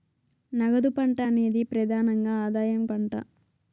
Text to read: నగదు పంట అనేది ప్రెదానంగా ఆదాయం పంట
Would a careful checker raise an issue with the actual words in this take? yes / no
no